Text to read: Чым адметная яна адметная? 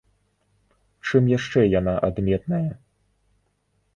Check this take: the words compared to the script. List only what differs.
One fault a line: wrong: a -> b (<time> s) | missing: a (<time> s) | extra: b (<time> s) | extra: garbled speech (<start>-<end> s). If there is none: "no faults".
wrong: адметная -> яшчэ (1.4 s)